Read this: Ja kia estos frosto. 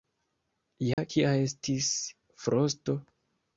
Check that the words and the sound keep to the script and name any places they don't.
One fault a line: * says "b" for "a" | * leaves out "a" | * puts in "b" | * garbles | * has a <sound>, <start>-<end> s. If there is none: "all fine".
* has a dropout, 0.9-1.0 s
* says "estis" for "estos"